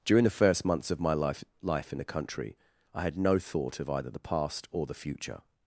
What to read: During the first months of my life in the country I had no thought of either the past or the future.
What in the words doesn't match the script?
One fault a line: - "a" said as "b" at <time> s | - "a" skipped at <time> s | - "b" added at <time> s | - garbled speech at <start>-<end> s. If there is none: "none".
- "life" added at 1.6 s